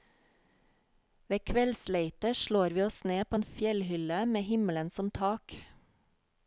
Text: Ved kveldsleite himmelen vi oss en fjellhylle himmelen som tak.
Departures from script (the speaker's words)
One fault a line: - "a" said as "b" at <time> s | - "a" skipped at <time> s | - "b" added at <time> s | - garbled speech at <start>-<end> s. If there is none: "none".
- "himmelen" said as "slår" at 2.4 s
- "ned på" added at 3.1 s
- "med" added at 4.2 s